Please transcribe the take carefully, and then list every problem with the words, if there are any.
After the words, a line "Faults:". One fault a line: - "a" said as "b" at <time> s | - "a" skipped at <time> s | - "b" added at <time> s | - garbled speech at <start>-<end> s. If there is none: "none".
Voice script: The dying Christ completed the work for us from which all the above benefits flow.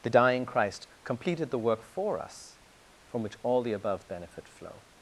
The dying Christ completed the work for us from which all the above benefit flow.
Faults:
- "benefits" said as "benefit" at 4.1 s